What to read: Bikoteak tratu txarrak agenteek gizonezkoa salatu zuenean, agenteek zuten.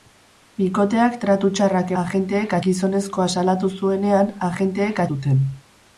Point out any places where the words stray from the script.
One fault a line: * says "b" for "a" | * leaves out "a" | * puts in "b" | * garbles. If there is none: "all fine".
all fine